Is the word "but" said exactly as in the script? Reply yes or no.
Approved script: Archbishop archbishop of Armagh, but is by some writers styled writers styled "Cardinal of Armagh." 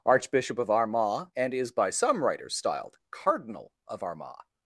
no